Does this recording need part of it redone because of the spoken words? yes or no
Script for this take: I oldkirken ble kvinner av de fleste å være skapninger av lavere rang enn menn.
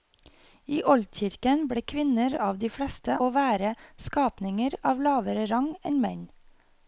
no